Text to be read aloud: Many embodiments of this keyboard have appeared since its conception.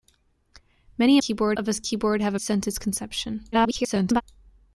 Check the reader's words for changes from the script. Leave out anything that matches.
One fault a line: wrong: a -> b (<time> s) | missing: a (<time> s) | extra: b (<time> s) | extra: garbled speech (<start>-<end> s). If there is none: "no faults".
wrong: embodiments -> keyboard (1.2 s)
missing: appeared (2.3 s)
extra: garbled speech (3.5-4.2 s)